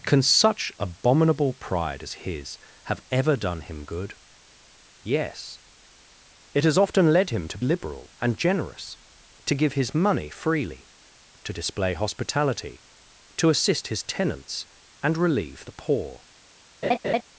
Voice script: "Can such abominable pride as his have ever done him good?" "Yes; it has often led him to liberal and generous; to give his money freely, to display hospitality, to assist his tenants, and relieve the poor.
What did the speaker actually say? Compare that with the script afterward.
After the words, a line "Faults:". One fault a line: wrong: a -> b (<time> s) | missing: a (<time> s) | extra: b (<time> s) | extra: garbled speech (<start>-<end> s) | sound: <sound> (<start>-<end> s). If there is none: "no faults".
"Can such abominable pride as his have ever done him good?" "Yes; it has often led him to liberal and generous; to give his money freely, to display hospitality, to assist his tenants, and relieve the poor.
Faults:
sound: laugh (16.8-17.2 s)